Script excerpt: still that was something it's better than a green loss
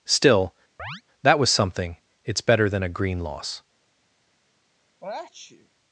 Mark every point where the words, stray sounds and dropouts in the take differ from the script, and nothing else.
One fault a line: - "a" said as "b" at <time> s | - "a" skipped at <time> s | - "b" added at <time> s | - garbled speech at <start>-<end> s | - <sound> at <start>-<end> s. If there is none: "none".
- chirp at 0.8-1.0 s
- sneeze at 5.0-5.7 s